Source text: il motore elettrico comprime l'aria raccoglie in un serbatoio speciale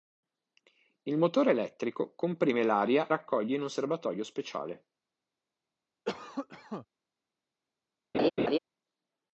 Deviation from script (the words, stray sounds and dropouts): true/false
true